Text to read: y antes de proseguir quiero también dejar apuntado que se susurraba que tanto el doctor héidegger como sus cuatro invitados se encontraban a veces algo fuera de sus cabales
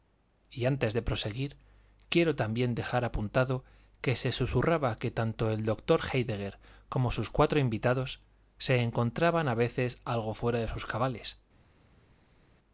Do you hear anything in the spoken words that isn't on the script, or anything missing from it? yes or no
no